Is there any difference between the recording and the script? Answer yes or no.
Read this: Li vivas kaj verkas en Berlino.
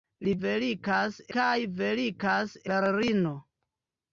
yes